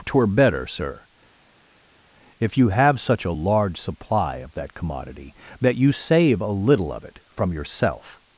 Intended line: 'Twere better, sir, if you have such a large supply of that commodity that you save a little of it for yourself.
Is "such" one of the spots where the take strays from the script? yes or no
no